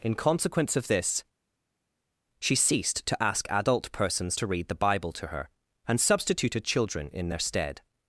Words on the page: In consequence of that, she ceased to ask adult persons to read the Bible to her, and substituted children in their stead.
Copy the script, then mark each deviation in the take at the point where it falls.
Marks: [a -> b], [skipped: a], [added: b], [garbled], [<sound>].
In consequence of [that, -> this] she ceased to ask adult persons to read the Bible to her, and substituted children in their stead.